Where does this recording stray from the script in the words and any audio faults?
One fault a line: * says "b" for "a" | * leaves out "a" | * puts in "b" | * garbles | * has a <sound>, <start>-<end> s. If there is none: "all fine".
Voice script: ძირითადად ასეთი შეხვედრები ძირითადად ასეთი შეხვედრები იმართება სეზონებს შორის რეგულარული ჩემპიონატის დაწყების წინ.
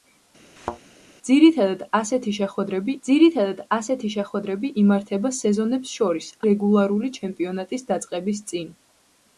* has a thud, 0.6-0.8 s